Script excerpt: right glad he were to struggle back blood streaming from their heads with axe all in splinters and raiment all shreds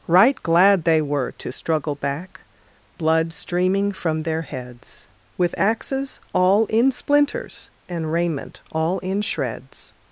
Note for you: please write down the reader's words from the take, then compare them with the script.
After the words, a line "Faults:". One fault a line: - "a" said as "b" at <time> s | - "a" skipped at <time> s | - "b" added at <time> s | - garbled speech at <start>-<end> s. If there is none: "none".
right glad they were to struggle back blood streaming from their heads with axes all in splinters and raiment all in shreds
Faults:
- "he" said as "they" at 0.8 s
- "axe" said as "axes" at 5.6 s
- "in" added at 9.0 s